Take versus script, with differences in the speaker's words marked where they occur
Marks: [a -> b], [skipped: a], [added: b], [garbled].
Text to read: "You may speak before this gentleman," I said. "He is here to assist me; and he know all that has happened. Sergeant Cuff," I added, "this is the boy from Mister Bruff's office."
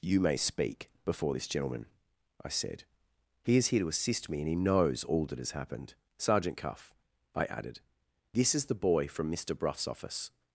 "You may speak before this gentleman," I said. "He is here to assist me; and he [know -> knows] all that has happened. Sergeant Cuff," I added, "this is the boy from Mister Bruff's office."